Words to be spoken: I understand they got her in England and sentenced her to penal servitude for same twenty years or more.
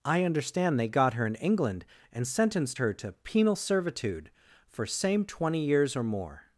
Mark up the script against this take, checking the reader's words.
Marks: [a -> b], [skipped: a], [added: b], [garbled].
I understand they got her in England and sentenced her to penal servitude for same twenty years or more.